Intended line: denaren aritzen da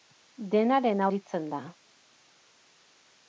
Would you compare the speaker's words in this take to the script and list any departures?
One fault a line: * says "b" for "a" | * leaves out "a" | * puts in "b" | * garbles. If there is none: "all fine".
all fine